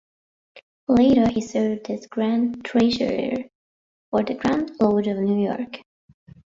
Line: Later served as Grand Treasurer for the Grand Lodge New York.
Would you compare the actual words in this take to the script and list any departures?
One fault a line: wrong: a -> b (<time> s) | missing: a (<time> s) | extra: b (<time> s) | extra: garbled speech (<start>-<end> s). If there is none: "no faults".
extra: he (1.3 s)
extra: of (5.1 s)